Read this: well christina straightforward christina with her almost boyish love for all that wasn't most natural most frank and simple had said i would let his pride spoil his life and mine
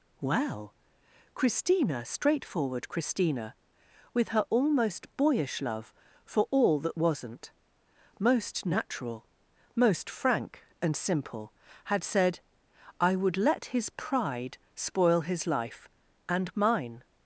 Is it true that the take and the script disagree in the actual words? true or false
false